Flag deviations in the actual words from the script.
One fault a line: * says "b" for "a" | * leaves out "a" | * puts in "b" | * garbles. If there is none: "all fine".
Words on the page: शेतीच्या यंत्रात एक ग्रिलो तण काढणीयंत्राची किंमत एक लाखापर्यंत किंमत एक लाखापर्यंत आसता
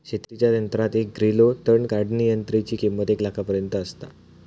* leaves out "किंमत एक लाखापर्यंत"